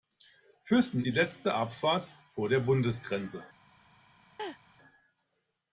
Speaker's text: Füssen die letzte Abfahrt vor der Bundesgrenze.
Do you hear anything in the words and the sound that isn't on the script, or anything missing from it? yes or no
yes